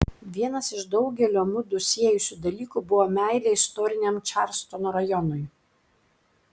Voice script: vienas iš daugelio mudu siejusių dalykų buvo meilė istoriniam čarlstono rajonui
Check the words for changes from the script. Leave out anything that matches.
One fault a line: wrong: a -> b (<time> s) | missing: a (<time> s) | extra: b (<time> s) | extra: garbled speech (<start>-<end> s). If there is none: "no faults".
no faults